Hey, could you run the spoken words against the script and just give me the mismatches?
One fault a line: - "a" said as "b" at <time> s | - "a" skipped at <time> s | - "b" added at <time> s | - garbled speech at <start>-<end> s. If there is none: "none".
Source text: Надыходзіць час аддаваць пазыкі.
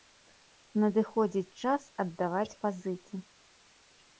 none